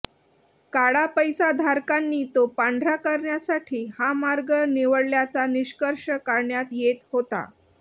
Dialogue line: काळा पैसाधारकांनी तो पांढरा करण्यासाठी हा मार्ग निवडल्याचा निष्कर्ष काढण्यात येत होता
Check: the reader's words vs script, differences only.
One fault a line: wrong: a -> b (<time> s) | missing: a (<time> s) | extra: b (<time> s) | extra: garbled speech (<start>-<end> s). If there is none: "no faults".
no faults